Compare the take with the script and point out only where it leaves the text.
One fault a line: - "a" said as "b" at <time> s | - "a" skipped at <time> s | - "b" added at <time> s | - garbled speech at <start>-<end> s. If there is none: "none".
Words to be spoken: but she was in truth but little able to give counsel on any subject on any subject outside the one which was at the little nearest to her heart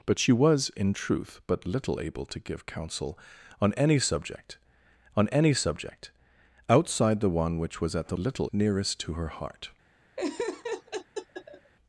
none